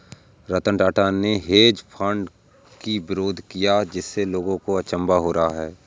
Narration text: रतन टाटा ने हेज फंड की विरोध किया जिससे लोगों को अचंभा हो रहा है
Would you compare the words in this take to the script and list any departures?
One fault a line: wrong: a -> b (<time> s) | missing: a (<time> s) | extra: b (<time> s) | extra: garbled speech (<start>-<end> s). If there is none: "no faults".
no faults